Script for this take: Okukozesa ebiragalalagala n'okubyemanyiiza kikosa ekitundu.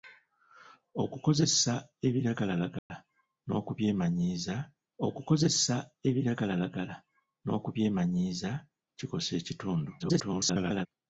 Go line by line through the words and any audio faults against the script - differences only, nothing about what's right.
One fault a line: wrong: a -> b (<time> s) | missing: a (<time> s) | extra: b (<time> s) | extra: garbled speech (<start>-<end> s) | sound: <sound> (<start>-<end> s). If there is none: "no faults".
sound: dropout (2.8-2.9 s)
extra: okukozesa ebiragalalagala n'okubyemanyiiza (5.1 s)
extra: garbled speech (10.0-10.9 s)